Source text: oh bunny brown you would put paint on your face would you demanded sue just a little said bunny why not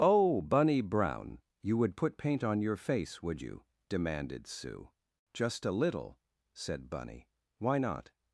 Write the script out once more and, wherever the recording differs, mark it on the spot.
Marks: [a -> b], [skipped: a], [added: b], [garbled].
oh bunny brown you would put paint on your face would you demanded sue just a little said bunny why not